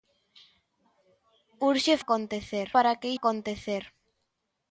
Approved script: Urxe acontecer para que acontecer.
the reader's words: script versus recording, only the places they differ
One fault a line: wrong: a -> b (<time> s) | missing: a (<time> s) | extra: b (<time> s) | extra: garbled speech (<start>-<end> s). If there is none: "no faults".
no faults